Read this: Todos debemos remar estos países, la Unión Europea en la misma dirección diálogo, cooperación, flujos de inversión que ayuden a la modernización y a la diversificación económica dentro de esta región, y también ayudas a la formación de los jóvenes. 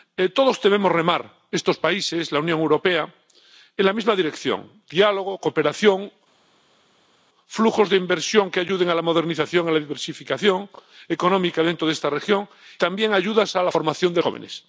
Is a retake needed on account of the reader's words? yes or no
yes